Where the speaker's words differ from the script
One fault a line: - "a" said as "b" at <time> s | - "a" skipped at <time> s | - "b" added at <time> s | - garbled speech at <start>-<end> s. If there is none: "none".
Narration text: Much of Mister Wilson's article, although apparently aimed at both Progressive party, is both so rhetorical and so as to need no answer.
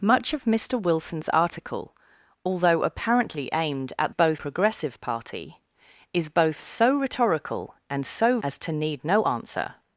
none